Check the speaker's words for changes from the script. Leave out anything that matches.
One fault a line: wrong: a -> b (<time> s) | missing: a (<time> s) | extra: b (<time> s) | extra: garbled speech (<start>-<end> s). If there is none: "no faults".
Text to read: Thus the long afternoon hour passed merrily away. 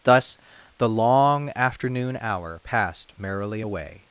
no faults